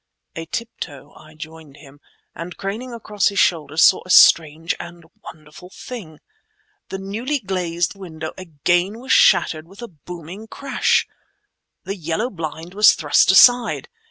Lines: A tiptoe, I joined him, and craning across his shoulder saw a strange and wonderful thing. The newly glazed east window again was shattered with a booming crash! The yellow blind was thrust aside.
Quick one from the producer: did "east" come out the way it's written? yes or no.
no